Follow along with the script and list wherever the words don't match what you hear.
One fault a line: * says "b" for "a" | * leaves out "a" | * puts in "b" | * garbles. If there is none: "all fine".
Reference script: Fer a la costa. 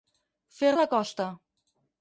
all fine